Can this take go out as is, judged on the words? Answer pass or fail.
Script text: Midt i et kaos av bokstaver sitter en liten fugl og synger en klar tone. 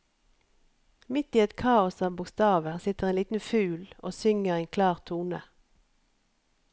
pass